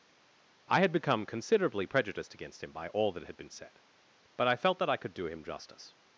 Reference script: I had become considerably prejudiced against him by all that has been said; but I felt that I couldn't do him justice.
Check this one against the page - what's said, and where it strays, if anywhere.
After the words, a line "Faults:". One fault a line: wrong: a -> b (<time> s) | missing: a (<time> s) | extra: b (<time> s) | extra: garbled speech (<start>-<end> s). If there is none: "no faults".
I had become considerably prejudiced against him by all that had been said; but I felt that I could do him justice.
Faults:
wrong: has -> had (3.2 s)
wrong: couldn't -> could (5.0 s)